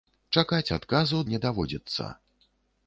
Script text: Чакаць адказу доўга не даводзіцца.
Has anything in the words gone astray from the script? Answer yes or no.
yes